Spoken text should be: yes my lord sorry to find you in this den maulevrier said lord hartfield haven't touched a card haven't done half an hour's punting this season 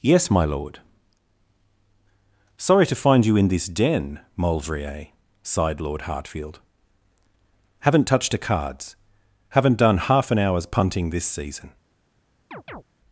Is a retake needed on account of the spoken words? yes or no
yes